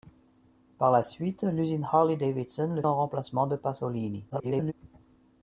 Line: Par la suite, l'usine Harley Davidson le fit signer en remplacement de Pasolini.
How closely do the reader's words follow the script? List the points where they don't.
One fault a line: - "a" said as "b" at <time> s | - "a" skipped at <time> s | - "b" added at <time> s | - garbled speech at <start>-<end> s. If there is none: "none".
- "fit signer" skipped at 2.8 s
- garbled speech at 4.3-4.7 s